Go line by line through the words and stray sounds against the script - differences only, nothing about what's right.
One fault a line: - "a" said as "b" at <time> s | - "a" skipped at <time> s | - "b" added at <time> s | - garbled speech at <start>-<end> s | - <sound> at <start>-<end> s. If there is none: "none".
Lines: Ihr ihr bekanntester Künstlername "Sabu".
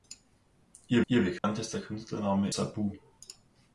- dropout at 1.4-1.4 s